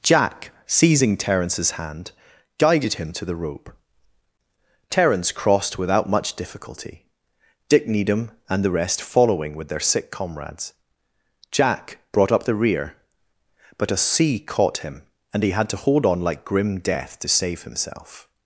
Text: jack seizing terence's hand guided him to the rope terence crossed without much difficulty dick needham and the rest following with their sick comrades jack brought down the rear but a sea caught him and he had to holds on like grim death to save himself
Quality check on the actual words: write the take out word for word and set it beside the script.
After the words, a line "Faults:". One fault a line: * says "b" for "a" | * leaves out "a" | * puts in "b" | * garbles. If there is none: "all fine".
jack seizing terence's hand guided him to the rope terence crossed without much difficulty dick needham and the rest following with their sick comrades jack brought up the rear but a sea caught him and he had to hold on like grim death to save himself
Faults:
* says "up" for "down"
* says "hold" for "holds"